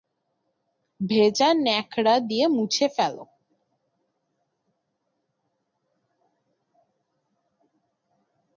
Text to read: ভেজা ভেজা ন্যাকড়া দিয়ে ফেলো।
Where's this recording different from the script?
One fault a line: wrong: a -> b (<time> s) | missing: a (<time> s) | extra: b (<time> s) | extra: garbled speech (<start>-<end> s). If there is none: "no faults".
missing: ভেজা (1.5 s)
extra: মুছে (2.5 s)